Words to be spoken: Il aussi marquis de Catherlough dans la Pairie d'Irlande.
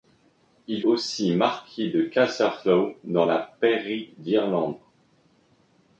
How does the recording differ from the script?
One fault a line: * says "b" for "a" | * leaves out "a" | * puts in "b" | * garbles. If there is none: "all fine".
all fine